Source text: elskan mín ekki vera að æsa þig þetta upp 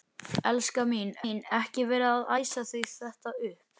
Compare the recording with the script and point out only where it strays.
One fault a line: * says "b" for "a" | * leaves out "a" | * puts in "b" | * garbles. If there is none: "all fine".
* puts in "mín"